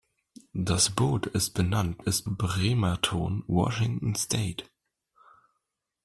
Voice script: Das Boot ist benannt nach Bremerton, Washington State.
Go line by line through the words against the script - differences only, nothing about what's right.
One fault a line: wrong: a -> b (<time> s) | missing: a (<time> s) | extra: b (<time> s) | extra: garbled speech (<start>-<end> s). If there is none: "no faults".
wrong: nach -> ist (2.0 s)